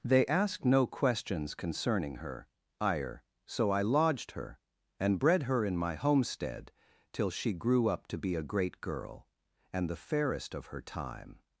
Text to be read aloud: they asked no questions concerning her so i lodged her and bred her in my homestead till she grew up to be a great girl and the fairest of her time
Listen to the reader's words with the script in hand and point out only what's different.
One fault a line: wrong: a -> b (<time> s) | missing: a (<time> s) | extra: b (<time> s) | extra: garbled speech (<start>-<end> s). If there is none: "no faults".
extra: ire (2.8 s)